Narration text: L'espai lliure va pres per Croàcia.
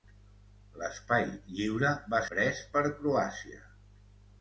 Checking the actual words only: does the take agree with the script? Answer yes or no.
yes